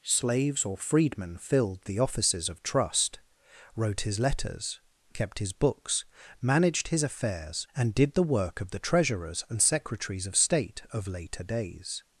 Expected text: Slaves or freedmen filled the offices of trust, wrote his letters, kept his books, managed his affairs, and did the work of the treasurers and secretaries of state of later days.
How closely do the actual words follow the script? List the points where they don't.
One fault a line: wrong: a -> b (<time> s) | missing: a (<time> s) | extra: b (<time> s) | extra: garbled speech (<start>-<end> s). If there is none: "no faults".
no faults